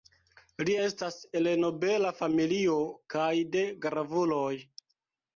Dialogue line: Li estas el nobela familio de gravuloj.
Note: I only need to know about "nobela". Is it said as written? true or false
true